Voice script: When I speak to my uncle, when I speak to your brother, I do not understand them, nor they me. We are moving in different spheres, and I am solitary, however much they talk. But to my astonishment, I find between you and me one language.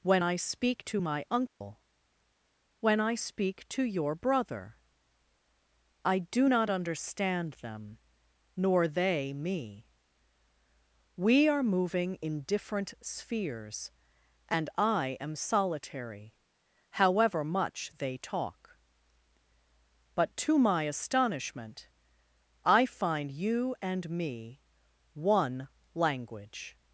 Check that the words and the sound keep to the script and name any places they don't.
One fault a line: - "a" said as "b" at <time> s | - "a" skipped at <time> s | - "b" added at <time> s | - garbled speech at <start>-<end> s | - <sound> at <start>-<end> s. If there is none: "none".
- dropout at 1.5-1.6 s
- "between" skipped at 23.3 s